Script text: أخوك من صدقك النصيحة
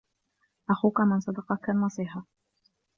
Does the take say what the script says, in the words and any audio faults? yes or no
yes